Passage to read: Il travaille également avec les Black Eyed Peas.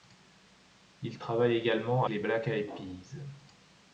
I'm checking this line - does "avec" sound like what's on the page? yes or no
no